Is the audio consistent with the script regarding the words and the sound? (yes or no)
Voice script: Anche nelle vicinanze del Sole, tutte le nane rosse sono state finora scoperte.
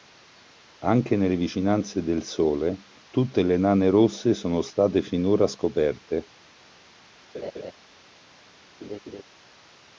no